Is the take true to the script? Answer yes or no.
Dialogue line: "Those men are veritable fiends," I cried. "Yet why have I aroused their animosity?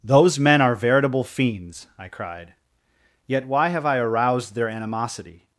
yes